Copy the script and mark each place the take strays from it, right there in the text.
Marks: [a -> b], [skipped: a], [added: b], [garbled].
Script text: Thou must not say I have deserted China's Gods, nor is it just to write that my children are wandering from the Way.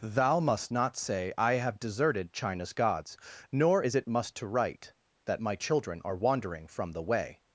Thou must not say I have deserted China's Gods, nor is it [just -> must] to write that my children are wandering from the Way.